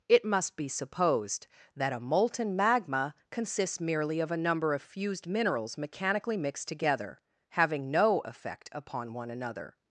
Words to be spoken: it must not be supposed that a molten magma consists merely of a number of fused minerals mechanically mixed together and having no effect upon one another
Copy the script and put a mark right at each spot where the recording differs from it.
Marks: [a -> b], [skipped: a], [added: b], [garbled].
it must [skipped: not] be supposed that a molten magma consists merely of a number of fused minerals mechanically mixed together [skipped: and] having no effect upon one another